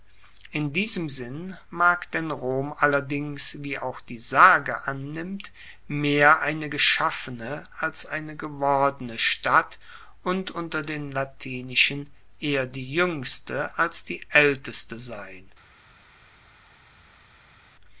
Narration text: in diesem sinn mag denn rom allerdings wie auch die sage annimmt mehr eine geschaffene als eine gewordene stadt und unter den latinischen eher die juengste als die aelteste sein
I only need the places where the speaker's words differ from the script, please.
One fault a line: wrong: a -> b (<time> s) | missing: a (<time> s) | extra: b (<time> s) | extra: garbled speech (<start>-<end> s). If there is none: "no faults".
no faults